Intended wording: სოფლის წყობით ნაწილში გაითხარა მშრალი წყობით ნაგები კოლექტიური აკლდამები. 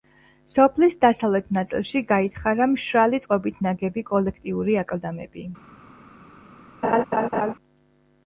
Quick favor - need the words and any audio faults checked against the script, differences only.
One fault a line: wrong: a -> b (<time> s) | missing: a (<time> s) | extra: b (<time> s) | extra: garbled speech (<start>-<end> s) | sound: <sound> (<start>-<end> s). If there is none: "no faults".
wrong: წყობით -> დასავლეთ (1.0 s)
sound: laugh (6.8-7.5 s)